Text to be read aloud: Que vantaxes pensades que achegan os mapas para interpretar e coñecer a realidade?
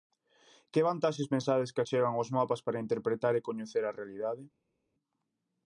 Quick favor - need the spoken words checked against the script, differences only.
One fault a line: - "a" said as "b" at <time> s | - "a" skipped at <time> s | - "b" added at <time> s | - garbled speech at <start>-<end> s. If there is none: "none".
none